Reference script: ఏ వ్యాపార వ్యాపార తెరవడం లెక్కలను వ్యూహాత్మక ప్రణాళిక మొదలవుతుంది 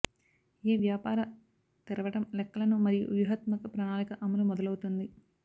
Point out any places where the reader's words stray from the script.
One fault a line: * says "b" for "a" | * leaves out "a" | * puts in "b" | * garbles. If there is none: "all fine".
* leaves out "వ్యాపార"
* puts in "మరియు"
* puts in "అమలు"